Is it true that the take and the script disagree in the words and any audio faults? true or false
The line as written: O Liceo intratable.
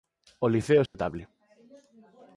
true